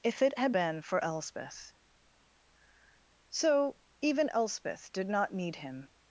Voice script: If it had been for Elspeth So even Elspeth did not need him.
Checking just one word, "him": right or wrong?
right